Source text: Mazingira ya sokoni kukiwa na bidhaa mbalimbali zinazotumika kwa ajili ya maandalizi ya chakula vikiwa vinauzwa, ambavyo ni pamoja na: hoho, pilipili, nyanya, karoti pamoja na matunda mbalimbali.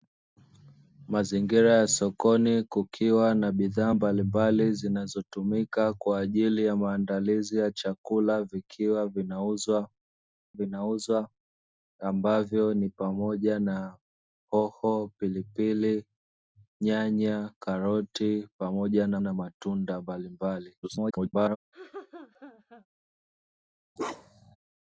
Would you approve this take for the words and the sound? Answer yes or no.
no